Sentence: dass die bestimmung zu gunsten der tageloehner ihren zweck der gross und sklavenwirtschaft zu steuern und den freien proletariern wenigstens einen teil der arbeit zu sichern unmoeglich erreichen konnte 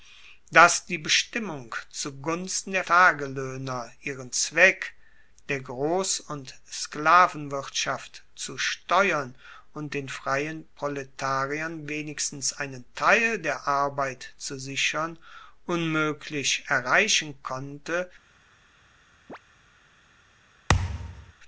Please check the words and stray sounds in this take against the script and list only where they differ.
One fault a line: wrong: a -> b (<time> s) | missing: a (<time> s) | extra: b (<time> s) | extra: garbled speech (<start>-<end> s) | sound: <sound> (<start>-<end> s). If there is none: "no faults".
sound: chirp (19.3-19.4 s)
sound: thud (20.7-21.3 s)